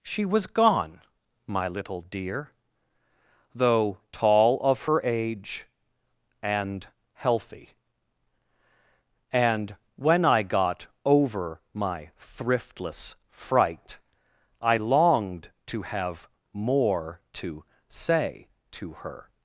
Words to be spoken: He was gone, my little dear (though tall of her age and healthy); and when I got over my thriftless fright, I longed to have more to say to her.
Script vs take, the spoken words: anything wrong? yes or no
yes